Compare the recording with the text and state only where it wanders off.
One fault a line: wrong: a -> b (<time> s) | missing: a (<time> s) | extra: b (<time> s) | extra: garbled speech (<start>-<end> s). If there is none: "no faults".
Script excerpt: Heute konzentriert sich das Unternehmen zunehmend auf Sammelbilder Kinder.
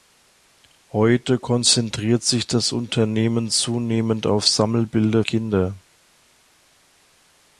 no faults